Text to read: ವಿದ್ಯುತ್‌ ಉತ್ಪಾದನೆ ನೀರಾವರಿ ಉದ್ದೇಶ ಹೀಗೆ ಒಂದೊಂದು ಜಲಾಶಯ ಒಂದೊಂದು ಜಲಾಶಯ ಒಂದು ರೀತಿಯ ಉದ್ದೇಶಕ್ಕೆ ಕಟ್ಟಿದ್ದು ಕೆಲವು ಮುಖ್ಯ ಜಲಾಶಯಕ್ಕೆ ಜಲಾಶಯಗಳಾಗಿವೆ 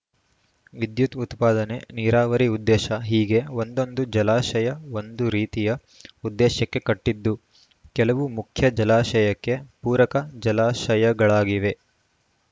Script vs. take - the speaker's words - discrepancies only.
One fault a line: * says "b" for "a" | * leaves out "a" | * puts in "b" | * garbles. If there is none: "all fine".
* leaves out "ಒಂದೊಂದು ಜಲಾಶಯ"
* puts in "ಪೂರಕ"